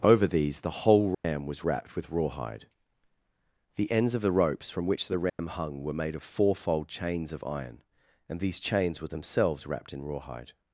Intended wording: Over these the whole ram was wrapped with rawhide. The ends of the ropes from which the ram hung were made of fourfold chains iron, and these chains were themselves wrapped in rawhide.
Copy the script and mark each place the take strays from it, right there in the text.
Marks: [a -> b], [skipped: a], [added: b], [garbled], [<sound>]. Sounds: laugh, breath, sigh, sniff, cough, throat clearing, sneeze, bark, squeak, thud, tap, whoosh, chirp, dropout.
Over these the whole ram [dropout] was wrapped with rawhide. The ends of the ropes from which the ram [dropout] hung were made of fourfold chains [added: of] iron, and these chains were themselves wrapped in rawhide.